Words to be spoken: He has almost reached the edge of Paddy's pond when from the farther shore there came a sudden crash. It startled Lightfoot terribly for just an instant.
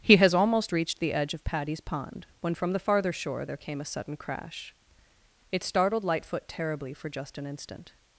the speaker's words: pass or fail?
pass